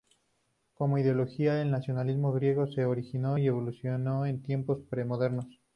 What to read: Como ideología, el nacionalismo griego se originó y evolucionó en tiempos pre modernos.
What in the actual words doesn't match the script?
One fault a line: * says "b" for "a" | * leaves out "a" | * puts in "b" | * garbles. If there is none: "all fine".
all fine